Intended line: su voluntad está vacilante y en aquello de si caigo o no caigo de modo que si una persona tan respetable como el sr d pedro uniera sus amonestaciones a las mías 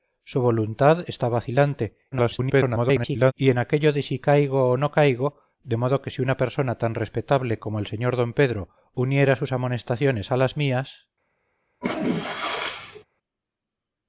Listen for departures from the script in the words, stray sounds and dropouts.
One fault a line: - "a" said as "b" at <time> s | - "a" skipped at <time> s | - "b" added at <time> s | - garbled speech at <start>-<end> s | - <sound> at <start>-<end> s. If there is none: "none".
- garbled speech at 2.1-3.3 s
- sneeze at 11.8-13.0 s